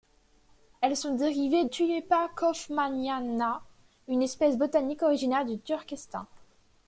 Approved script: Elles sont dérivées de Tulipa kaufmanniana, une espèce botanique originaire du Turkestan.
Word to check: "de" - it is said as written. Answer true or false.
false